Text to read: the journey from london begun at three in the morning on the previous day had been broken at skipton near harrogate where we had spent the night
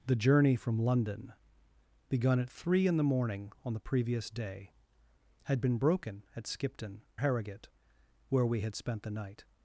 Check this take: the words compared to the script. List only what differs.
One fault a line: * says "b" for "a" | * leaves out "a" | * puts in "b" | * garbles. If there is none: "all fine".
* leaves out "near"